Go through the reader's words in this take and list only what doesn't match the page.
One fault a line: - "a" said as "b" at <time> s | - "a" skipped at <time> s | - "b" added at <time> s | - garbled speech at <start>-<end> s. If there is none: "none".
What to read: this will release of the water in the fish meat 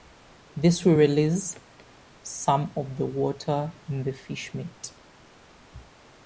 - "some" added at 2.2 s